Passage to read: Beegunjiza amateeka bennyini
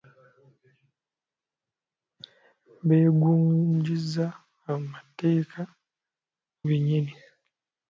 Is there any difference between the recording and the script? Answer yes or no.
no